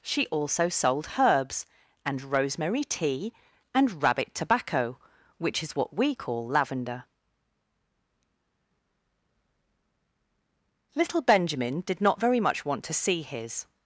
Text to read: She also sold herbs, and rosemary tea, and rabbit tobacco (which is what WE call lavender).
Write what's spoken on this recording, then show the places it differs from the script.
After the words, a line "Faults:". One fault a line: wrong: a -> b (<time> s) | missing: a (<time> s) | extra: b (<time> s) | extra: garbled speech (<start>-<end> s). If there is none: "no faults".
She also sold herbs, and rosemary tea, and rabbit tobacco (which is what WE call lavender). LITTLE Benjamin did not very much want to see his
Faults:
extra: LITTLE Benjamin did not very much want to see his (10.9 s)